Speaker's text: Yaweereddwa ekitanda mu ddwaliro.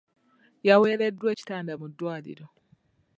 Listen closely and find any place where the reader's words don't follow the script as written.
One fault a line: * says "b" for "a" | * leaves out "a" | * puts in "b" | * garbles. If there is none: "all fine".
all fine